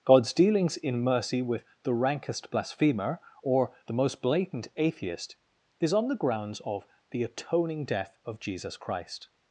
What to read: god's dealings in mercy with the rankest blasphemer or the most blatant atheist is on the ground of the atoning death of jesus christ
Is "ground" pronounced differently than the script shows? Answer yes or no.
yes